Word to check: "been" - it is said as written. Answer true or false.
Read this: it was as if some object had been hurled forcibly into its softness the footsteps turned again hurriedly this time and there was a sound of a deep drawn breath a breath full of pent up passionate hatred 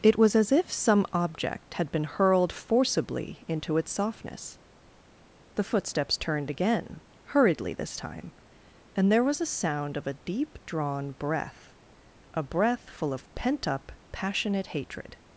true